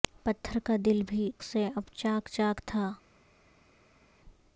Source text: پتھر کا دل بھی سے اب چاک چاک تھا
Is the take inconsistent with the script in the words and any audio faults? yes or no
no